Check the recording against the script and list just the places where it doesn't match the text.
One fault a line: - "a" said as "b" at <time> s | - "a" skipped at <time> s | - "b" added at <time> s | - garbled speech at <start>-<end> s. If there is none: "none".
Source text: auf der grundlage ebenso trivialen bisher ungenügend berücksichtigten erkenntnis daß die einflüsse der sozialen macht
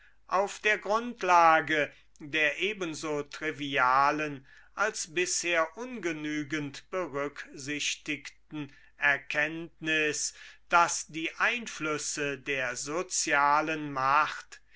- "der" added at 2.2 s
- "als" added at 4.7 s